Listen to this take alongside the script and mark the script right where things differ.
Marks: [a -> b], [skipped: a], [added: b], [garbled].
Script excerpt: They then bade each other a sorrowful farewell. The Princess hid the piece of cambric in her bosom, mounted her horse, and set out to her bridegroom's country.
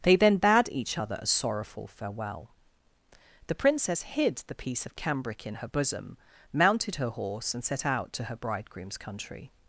They then bade each other a sorrowful farewell. The Princess hid the piece of cambric in her bosom, mounted her horse, and set out to her bridegroom's country.